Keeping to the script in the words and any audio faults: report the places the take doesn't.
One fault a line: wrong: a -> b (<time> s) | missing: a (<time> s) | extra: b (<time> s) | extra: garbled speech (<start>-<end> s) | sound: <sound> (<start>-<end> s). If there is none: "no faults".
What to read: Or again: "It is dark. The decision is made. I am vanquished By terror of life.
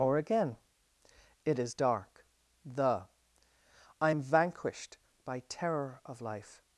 missing: decision is made (3.1 s)